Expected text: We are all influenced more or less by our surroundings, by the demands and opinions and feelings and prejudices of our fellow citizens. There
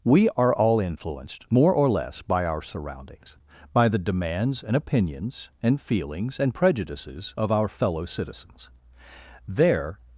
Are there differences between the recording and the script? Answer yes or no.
no